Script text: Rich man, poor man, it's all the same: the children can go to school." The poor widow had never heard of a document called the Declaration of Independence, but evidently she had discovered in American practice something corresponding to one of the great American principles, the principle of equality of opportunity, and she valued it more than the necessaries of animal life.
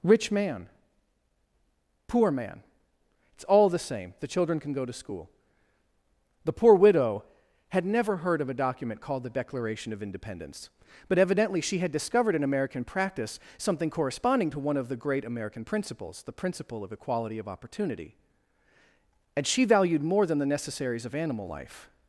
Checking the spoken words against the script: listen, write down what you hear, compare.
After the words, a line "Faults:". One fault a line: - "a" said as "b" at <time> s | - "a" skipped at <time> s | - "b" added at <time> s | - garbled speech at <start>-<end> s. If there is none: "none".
Rich man, poor man, it's all the same: the children can go to school." The poor widow had never heard of a document called the Declaration of Independence, but evidently she had discovered in American practice something corresponding to one of the great American principles, the principle of equality of opportunity, and she valued more than the necessaries of animal life.
Faults:
- "it" skipped at 20.0 s